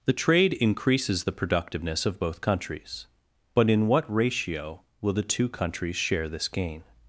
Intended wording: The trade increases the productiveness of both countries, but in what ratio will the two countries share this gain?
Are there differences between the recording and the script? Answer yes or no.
no